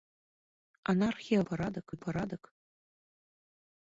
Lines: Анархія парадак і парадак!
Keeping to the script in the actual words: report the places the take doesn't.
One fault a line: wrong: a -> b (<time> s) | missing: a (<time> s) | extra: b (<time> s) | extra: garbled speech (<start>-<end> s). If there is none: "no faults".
no faults